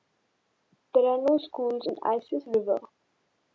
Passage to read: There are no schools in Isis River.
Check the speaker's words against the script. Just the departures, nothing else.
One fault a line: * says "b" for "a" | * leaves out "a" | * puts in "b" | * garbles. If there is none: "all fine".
all fine